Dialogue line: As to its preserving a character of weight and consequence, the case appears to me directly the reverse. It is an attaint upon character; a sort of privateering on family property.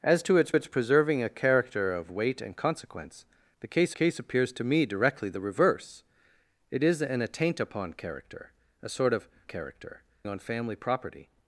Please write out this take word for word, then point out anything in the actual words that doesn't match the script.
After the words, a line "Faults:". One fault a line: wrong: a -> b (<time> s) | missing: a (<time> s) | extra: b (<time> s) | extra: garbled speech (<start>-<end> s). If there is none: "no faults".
As to its its preserving a character of weight and consequence, the case case appears to me directly the reverse. It is an attaint upon character; a sort of character on family property.
Faults:
extra: its (0.5 s)
extra: case (3.9 s)
wrong: privateering -> character (9.4 s)